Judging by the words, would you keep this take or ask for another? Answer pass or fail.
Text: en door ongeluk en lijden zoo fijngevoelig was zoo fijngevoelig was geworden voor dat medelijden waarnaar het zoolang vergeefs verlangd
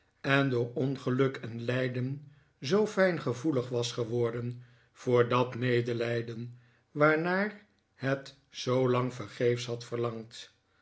fail